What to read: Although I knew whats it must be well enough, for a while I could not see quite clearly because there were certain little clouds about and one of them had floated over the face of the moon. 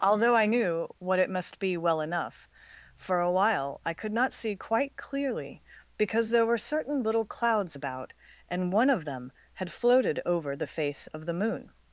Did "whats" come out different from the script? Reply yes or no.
yes